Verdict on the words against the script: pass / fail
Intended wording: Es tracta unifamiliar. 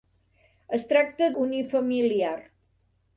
pass